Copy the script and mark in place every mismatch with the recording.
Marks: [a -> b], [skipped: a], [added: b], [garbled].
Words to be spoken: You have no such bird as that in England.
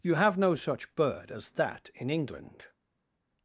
You have no such bird as that in England.